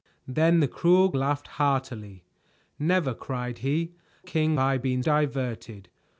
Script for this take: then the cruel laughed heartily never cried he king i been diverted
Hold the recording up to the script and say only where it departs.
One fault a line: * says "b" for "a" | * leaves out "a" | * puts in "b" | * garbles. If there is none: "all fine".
all fine